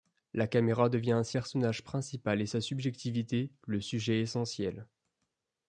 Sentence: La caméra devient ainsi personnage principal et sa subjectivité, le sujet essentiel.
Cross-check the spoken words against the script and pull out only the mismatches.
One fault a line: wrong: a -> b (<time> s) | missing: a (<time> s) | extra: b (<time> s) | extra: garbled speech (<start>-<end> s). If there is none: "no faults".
no faults